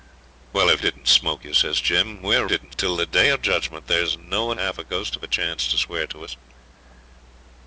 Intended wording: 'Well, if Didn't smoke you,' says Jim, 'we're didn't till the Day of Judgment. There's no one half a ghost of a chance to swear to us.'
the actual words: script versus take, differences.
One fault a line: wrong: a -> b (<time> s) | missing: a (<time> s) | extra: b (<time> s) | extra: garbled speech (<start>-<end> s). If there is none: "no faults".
no faults